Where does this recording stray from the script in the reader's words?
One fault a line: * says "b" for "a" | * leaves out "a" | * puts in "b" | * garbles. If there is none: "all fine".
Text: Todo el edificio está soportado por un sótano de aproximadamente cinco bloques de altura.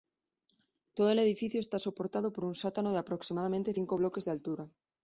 all fine